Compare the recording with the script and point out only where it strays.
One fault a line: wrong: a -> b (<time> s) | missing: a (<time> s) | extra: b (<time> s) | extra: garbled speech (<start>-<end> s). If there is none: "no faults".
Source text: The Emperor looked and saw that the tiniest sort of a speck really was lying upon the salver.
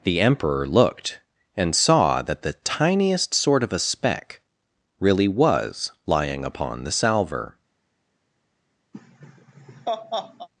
no faults